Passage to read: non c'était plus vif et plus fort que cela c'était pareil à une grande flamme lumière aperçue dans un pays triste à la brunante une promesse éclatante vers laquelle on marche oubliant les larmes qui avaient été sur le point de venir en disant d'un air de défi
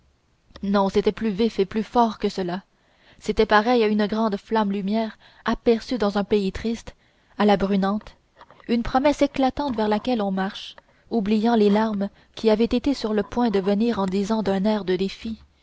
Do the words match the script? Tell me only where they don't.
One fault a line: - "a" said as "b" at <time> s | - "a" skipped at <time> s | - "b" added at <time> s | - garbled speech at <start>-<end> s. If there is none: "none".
none